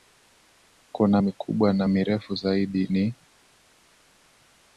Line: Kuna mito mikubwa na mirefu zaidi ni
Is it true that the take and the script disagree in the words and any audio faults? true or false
true